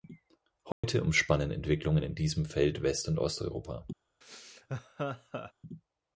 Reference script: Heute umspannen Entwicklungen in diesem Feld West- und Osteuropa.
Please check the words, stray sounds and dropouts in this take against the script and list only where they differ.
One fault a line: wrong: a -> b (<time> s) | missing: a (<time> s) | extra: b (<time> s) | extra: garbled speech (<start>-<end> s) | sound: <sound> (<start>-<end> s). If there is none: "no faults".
sound: dropout (0.7-0.8 s)
sound: laugh (4.2-5.5 s)